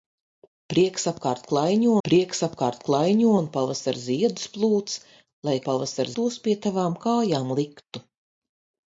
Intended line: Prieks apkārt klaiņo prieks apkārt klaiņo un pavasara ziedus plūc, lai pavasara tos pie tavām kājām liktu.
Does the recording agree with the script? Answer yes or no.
yes